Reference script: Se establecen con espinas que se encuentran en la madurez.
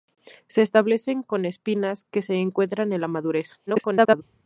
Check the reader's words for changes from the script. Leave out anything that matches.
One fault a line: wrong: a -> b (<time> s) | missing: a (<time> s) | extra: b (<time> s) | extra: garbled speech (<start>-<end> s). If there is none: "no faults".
extra: garbled speech (3.7-4.2 s)